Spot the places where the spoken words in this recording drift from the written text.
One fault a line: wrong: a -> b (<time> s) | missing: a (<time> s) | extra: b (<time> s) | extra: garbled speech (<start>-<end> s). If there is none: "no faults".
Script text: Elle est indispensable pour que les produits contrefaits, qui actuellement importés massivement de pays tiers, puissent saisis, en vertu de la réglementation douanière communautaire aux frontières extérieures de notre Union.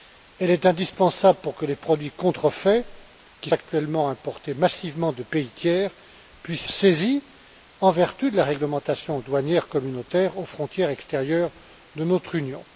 no faults